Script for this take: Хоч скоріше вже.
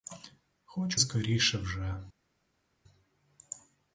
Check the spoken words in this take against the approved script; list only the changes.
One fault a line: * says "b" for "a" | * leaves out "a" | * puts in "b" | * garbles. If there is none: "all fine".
all fine